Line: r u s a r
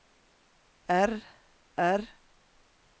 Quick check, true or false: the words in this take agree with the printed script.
false